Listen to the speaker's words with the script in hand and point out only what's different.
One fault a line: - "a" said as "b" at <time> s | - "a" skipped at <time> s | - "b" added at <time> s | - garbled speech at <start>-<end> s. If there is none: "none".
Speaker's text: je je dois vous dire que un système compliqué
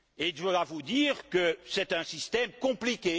- "je" skipped at 0.3 s
- "c'est" added at 1.6 s